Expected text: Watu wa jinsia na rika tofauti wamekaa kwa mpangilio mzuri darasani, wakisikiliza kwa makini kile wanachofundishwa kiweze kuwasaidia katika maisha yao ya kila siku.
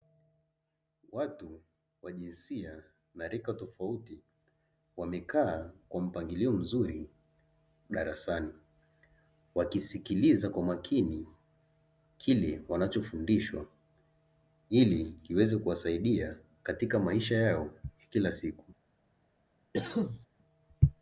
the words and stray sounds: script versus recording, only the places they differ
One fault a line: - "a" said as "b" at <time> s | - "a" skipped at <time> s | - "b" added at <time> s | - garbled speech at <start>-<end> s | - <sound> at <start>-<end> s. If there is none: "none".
- "ili" added at 14.7 s
- cough at 19.7-20.3 s